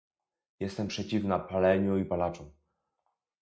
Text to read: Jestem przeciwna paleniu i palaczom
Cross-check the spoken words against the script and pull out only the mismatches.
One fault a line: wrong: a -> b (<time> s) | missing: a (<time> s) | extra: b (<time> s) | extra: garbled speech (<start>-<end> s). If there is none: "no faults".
no faults